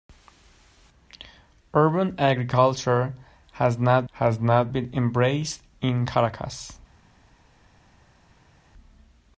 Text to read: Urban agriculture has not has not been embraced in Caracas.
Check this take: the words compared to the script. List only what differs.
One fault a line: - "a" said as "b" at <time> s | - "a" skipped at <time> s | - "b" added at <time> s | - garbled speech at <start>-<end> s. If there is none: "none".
none